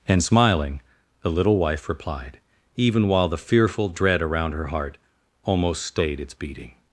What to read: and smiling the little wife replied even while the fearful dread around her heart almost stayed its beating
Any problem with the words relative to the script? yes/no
no